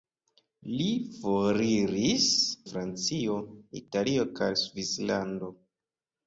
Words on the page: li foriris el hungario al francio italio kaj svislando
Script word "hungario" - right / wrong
wrong